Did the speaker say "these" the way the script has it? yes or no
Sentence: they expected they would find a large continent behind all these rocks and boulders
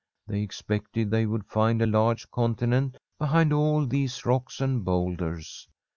yes